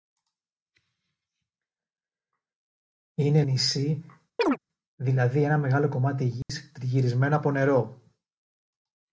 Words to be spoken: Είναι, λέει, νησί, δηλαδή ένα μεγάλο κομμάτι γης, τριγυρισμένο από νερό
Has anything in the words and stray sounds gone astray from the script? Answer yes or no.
yes